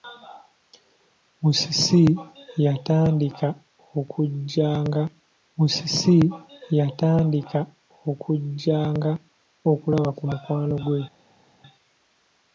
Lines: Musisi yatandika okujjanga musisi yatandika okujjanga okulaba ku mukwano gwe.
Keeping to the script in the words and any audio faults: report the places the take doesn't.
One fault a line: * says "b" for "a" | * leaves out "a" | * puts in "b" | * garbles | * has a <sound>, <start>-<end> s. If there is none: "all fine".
all fine